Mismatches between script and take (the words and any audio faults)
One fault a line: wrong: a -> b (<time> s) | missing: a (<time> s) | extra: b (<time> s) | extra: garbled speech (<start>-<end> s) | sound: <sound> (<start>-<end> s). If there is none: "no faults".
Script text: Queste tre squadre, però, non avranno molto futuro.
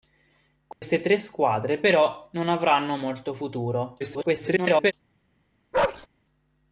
sound: dropout (0.7-0.8 s)
extra: garbled speech (4.0-4.9 s)
sound: bark (5.7-6.1 s)